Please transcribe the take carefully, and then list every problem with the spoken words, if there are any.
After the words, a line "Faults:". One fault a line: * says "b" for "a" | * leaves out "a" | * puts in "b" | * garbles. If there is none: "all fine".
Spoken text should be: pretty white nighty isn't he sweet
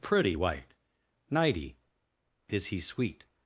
pretty white nighty is he sweet
Faults:
* says "is" for "isn't"